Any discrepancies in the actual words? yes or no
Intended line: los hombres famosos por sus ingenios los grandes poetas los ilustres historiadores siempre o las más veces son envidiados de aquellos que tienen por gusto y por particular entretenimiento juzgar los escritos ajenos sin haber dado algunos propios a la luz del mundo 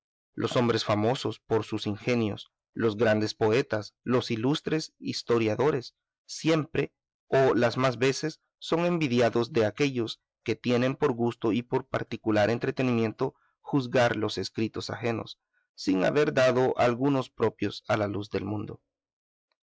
no